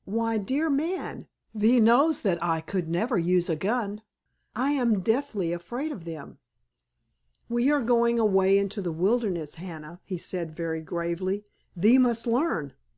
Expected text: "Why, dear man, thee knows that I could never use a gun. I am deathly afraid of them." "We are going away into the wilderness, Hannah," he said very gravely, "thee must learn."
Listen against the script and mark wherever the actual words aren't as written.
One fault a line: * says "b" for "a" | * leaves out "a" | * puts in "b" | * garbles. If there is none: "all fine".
all fine